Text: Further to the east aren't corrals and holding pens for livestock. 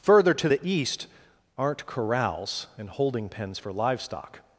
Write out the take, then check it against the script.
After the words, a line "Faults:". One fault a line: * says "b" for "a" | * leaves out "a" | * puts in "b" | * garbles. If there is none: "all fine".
Further to the east aren't corrals and holding pens for livestock.
Faults:
all fine